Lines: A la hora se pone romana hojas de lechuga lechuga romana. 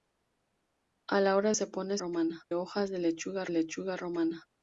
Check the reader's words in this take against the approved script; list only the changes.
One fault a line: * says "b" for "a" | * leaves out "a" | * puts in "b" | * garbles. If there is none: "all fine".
all fine